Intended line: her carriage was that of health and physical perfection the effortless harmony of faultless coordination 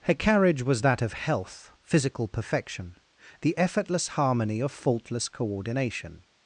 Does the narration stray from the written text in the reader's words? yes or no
yes